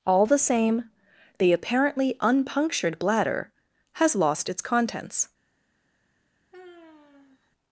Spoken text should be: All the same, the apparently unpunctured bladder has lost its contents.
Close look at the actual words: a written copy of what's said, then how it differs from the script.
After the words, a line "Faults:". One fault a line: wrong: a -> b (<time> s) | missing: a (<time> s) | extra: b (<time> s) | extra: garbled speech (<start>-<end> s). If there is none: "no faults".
All the same, the apparently unpunctured bladder has lost its contents.
Faults:
no faults